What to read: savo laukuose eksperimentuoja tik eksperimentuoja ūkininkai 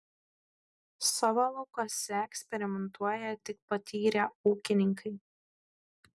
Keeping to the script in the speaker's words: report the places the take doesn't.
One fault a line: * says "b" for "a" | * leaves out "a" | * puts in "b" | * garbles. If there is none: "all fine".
* says "patyrę" for "eksperimentuoja"